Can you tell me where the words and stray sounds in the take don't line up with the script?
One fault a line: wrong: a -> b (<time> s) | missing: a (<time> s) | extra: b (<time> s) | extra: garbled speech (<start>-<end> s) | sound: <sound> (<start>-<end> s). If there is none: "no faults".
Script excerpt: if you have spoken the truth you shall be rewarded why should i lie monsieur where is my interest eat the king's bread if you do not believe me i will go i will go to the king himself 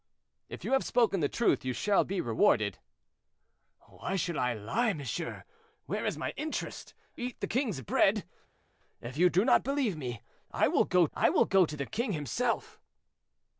no faults